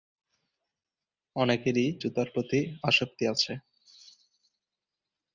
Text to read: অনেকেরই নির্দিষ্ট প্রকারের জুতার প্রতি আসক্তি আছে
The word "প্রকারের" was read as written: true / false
false